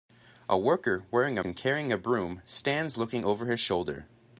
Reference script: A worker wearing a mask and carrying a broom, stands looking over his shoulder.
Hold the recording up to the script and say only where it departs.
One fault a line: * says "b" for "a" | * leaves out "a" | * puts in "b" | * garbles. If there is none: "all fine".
* leaves out "mask"